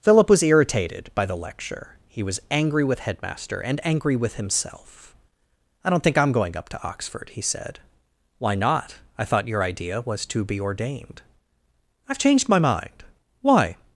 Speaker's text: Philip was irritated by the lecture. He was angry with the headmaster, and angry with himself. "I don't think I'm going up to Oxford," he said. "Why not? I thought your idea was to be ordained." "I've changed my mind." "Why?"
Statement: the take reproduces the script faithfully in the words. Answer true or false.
false